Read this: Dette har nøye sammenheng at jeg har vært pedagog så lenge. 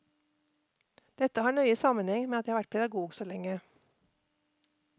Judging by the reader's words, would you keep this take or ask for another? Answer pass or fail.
fail